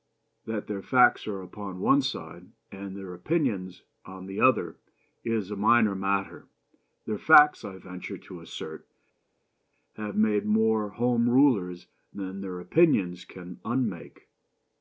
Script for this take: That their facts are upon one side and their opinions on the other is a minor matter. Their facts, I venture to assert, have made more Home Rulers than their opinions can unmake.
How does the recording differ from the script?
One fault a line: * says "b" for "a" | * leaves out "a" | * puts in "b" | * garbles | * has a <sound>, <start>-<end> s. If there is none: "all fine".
all fine